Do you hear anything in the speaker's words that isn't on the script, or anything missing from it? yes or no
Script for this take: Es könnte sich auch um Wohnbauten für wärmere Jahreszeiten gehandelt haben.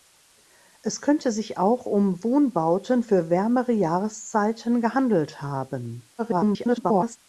yes